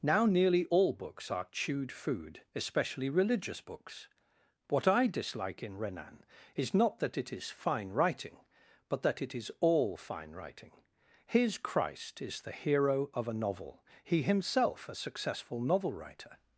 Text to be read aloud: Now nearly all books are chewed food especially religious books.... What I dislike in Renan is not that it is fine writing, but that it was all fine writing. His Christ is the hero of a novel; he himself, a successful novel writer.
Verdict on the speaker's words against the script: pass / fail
fail